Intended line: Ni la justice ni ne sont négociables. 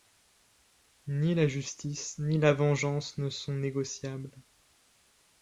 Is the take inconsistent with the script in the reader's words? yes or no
yes